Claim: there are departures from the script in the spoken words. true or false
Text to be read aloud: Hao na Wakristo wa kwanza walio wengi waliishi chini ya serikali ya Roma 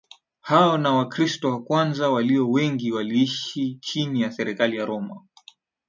false